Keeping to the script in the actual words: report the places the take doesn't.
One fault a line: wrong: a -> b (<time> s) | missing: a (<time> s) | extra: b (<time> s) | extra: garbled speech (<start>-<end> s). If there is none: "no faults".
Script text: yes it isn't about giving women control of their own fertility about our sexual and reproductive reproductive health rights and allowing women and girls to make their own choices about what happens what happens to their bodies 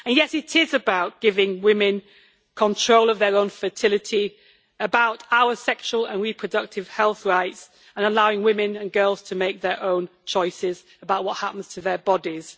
wrong: isn't -> is (0.6 s)
missing: reproductive (6.9 s)
missing: what happens (11.7 s)